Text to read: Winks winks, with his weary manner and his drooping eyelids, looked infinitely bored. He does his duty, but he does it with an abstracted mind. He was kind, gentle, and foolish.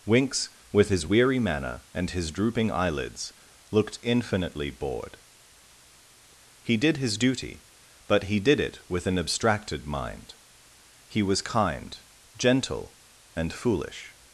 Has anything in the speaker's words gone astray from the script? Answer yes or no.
yes